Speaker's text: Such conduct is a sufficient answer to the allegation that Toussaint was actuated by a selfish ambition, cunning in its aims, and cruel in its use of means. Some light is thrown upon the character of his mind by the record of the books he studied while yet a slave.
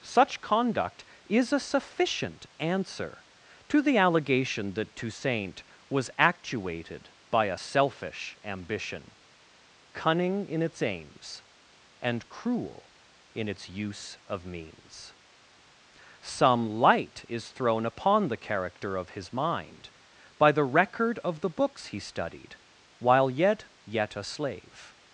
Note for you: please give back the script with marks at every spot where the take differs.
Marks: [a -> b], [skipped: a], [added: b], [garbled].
Such conduct is a sufficient answer to the allegation that Toussaint was actuated by a selfish ambition, cunning in its aims, and cruel in its use of means. Some light is thrown upon the character of his mind by the record of the books he studied while yet [added: yet] a slave.